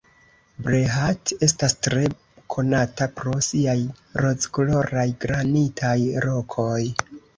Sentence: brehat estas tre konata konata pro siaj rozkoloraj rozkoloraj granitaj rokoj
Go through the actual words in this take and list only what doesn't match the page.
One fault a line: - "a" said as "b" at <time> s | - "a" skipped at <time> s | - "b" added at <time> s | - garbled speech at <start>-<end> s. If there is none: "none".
- "konata" skipped at 3.1 s
- "rozkoloraj" skipped at 5.1 s